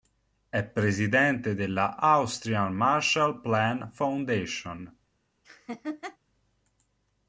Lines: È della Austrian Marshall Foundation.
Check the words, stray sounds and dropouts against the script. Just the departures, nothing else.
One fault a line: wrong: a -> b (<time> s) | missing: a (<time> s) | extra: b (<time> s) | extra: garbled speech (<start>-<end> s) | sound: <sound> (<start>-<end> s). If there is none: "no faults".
extra: presidente (0.6 s)
extra: Plan (3.4 s)
sound: laugh (5.4-6.2 s)